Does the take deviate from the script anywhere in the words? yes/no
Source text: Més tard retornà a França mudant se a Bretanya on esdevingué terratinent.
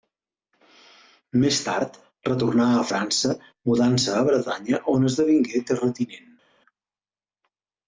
no